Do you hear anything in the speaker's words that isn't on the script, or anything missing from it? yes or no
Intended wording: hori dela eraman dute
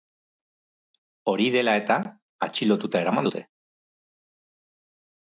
yes